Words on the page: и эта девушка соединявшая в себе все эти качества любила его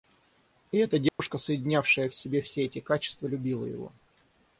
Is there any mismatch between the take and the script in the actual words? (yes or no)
no